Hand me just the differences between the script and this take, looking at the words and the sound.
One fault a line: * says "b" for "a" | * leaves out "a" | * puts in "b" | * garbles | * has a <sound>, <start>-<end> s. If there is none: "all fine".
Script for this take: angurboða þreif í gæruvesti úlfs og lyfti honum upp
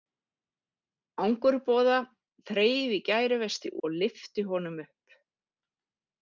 * leaves out "úlfs"